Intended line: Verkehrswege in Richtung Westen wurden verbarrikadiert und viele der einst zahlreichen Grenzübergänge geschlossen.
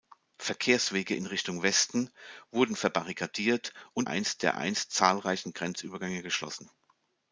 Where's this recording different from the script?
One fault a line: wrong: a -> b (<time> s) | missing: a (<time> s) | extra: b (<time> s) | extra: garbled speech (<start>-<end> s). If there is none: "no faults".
wrong: viele -> einst (4.0 s)